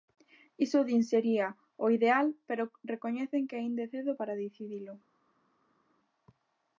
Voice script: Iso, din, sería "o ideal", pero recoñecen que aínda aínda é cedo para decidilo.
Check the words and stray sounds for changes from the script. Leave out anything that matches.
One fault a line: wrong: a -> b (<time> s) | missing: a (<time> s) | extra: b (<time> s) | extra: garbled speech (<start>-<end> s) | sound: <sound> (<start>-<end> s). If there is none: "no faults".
missing: aínda (3.8 s)